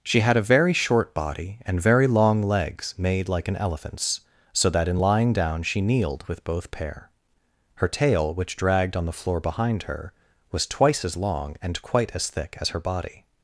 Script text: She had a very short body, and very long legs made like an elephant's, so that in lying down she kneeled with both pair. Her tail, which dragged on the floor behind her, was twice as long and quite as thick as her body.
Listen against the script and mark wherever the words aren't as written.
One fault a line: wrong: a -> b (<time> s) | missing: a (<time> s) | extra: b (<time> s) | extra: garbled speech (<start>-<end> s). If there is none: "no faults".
no faults